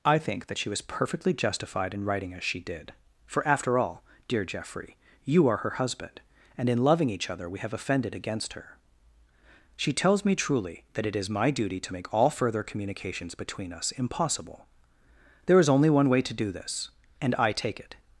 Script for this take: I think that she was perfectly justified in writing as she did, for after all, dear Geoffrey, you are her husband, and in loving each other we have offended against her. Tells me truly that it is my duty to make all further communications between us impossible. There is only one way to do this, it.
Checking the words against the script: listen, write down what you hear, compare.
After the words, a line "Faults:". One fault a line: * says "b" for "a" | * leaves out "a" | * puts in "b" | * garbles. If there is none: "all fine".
I think that she was perfectly justified in writing as she did, for after all, dear Geoffrey, you are her husband, and in loving each other we have offended against her. She tells me truly that it is my duty to make all further communications between us impossible. There is only one way to do this, and I take it.
Faults:
* puts in "She"
* puts in "and I take"